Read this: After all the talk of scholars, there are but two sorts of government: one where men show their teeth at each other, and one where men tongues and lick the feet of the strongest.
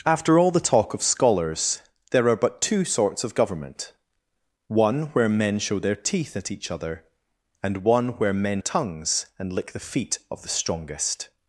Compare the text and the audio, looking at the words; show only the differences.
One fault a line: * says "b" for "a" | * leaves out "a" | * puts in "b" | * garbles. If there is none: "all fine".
all fine